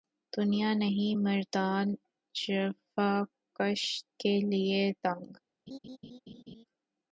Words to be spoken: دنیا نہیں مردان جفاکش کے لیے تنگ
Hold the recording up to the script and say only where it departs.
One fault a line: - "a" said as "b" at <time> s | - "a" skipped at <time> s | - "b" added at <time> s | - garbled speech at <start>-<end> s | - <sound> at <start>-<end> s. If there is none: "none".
- laugh at 5.7-6.6 s